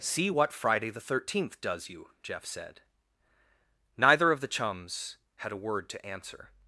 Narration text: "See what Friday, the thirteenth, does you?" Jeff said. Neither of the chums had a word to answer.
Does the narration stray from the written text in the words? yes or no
no